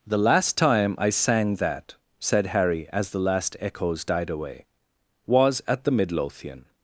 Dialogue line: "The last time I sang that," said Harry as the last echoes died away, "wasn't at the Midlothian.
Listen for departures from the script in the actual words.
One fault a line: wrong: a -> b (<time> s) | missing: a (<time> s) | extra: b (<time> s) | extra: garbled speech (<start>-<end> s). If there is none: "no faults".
wrong: wasn't -> was (5.3 s)